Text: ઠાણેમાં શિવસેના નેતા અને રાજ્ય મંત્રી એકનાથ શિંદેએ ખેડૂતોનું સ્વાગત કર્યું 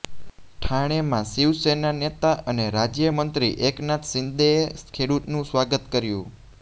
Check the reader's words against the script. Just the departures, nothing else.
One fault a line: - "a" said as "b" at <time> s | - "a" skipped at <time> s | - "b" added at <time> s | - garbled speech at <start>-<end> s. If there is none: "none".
none